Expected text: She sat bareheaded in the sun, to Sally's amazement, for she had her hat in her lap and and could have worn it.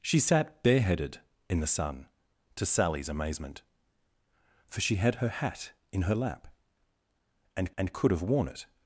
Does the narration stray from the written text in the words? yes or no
no